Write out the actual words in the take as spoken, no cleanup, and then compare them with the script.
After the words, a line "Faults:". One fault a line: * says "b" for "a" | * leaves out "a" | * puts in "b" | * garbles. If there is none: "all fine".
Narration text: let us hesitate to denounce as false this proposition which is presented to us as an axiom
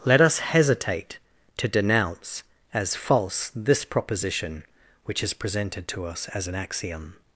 let us hesitate to denounce as false this proposition which is presented to us as an axiom
Faults:
all fine